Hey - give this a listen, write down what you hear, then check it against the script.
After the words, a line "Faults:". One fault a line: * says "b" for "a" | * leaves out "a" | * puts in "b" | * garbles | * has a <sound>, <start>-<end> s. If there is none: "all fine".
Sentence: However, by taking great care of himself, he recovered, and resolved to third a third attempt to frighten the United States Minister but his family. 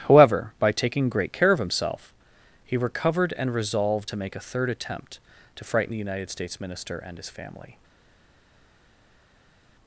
However, by taking great care of himself, he recovered, and resolved to make a third attempt to frighten the United States Minister and his family.
Faults:
* says "make" for "third"
* says "and" for "but"